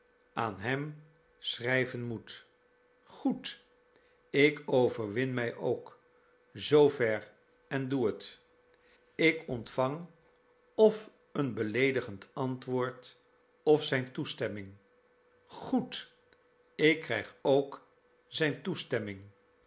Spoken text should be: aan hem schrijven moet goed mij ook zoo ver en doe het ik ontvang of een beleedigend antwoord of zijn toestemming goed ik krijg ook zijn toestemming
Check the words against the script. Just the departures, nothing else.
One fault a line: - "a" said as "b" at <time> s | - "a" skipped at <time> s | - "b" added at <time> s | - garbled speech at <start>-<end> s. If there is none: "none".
- "ik overwin" added at 4.3 s